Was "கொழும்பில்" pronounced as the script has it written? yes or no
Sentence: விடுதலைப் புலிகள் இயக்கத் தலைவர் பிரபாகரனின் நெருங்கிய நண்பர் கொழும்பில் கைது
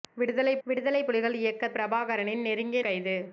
no